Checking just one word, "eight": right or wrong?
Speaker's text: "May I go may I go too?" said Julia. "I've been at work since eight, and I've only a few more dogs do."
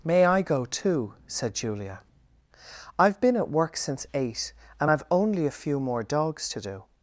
right